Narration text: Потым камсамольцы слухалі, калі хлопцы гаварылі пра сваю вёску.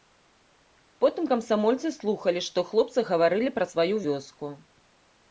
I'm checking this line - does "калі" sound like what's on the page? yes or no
no